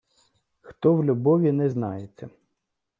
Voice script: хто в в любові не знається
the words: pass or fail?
fail